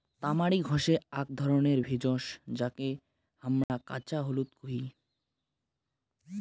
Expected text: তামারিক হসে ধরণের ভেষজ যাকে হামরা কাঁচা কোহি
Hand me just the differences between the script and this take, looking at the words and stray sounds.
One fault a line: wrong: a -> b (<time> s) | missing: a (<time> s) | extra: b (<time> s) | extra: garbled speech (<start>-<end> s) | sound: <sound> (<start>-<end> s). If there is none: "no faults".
extra: আক (1.1 s)
sound: dropout (3.6-3.7 s)
extra: হলুদ (4.2 s)